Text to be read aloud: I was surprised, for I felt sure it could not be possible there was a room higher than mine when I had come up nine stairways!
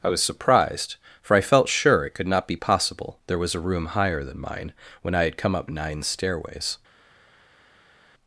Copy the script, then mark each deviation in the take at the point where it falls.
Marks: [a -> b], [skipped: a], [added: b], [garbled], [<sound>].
I was surprised, for I felt sure it could not be possible there was a room higher than mine when I had come up nine stairways!